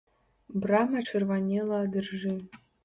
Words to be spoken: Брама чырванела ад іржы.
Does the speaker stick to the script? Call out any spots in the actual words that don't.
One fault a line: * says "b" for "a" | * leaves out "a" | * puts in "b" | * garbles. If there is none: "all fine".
all fine